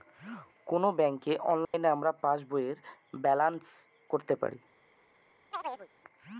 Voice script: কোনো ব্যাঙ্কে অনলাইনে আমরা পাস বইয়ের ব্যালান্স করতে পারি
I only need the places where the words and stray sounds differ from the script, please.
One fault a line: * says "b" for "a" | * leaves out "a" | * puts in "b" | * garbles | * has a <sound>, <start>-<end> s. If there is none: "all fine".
* has a dropout, 1.6-1.7 s
* has a chirp, 5.5-5.9 s